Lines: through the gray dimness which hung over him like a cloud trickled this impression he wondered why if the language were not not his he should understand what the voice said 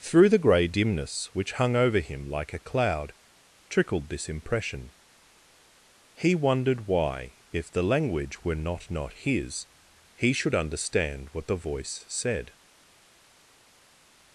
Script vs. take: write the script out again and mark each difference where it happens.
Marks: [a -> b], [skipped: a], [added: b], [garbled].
through the gray dimness which hung over him like a cloud trickled this impression he wondered why if the language were not not his he should understand what the voice said